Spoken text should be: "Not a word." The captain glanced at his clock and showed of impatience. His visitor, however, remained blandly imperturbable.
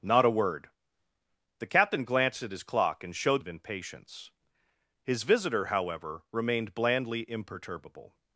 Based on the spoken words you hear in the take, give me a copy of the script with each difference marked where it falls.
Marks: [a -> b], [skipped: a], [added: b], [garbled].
"Not a word." The captain glanced at his clock and showed of impatience. His visitor, however, remained blandly imperturbable.